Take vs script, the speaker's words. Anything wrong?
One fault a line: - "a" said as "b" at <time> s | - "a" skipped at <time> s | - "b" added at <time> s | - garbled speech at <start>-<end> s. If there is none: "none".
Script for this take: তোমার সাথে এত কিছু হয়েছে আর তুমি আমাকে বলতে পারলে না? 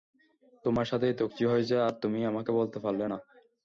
none